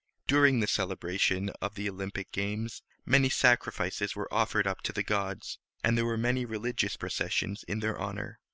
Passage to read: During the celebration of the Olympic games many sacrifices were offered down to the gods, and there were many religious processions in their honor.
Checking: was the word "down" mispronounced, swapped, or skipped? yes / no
yes